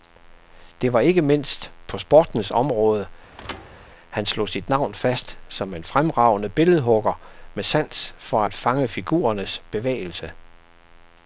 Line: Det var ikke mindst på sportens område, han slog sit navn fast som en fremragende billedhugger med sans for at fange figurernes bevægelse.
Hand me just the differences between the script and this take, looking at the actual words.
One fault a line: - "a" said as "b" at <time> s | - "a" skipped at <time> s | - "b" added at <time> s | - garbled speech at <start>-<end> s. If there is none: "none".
none